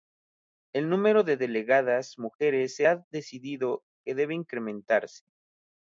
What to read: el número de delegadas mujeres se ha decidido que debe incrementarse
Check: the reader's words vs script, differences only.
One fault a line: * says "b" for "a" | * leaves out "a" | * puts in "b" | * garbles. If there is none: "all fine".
all fine